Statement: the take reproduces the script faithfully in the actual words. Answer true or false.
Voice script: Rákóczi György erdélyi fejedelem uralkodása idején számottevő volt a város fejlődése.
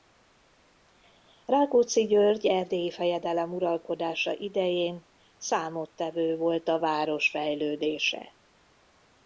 true